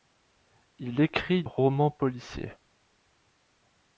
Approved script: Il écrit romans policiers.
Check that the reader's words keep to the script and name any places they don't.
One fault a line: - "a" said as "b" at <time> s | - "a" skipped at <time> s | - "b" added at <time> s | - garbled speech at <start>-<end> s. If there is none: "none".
none